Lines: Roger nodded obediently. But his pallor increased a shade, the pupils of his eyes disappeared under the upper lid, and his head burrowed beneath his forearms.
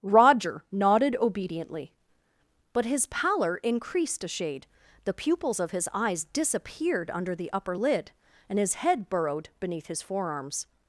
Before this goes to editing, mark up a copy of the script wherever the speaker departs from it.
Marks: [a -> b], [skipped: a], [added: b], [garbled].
Roger nodded obediently. But his pallor increased a shade, the pupils of his eyes disappeared under the upper lid, and his head burrowed beneath his forearms.